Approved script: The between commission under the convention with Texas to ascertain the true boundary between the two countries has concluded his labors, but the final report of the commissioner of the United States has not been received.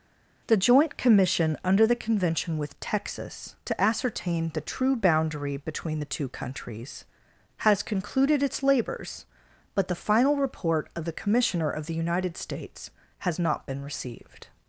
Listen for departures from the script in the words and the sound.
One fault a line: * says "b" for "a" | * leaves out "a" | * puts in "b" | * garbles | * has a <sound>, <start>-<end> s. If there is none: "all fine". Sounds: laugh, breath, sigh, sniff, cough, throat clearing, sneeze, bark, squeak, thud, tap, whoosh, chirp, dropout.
* says "joint" for "between"
* says "its" for "his"